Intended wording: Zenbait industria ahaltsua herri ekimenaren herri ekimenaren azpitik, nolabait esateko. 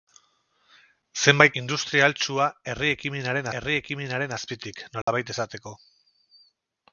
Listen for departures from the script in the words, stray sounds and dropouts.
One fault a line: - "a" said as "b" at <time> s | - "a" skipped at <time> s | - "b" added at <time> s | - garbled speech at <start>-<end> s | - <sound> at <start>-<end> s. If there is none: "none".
- dropout at 5.0-5.1 s